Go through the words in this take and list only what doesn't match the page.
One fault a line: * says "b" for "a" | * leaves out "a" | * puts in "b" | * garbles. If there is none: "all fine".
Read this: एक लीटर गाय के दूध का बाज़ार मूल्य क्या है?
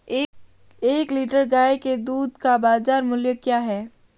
all fine